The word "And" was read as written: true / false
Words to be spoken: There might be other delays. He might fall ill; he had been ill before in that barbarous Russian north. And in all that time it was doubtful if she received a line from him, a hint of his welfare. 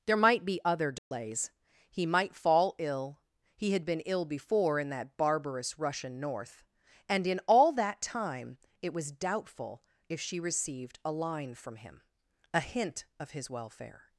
true